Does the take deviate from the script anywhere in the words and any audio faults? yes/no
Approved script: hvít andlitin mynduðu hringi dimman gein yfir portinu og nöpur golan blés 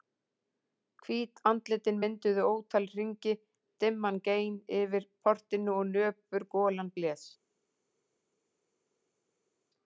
yes